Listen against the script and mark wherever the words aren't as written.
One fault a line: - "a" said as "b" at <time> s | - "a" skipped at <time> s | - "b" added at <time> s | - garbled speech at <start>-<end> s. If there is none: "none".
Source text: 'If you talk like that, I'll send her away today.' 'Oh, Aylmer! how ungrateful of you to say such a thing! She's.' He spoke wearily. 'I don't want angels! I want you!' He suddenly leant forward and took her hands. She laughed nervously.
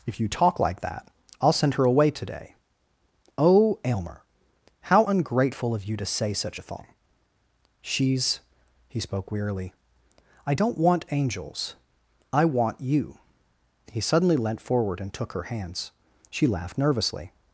none